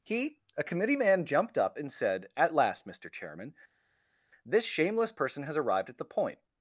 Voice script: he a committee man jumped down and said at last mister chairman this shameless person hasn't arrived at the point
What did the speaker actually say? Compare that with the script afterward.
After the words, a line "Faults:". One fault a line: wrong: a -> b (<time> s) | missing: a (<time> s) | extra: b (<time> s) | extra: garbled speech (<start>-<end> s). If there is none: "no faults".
he a committee man jumped up and said at last mister chairman this shameless person has arrived at the point
Faults:
wrong: down -> up (1.6 s)
wrong: hasn't -> has (5.4 s)